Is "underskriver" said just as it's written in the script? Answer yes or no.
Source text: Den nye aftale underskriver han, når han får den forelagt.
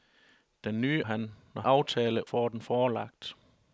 no